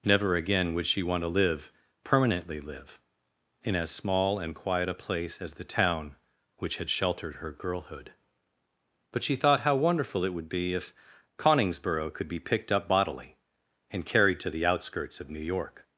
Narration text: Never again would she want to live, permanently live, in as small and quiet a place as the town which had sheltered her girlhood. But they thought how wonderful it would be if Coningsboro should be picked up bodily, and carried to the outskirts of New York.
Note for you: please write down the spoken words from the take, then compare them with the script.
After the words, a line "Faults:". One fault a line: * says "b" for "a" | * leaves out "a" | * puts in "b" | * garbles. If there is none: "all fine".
Never again would she want to live, permanently live, in as small and quiet a place as the town which had sheltered her girlhood. But she thought how wonderful it would be if Coningsboro could be picked up bodily, and carried to the outskirts of New York.
Faults:
* says "she" for "they"
* says "could" for "should"